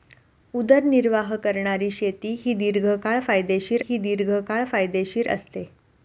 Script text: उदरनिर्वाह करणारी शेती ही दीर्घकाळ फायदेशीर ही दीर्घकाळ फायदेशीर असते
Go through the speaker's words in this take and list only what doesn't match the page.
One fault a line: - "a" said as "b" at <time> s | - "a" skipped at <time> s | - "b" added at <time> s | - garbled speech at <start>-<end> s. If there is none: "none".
none